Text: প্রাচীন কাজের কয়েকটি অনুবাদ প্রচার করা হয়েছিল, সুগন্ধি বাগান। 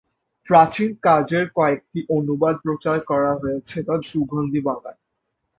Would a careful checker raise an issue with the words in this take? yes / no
no